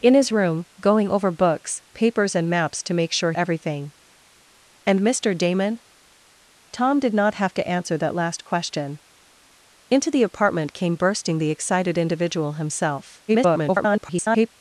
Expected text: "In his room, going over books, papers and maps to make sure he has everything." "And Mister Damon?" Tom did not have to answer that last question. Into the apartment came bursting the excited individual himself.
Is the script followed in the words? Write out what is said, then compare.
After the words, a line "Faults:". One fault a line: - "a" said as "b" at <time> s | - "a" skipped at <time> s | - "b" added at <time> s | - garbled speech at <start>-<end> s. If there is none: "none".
"In his room, going over books, papers and maps to make sure everything." "And Mister Damon?" Tom did not have to answer that last question. Into the apartment came bursting the excited individual himself. [garbled]
Faults:
- "he has" skipped at 3.3 s
- garbled speech at 13.3-14.5 s